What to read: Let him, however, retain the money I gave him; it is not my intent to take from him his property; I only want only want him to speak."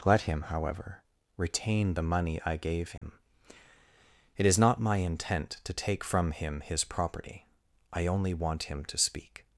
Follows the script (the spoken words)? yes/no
no